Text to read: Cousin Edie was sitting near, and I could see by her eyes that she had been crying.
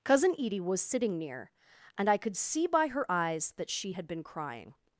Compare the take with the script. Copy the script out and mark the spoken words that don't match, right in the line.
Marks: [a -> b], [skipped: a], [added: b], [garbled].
Cousin Edie was sitting near, and I could see by her eyes that she had been crying.